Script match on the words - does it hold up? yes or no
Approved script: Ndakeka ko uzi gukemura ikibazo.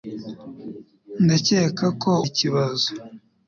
no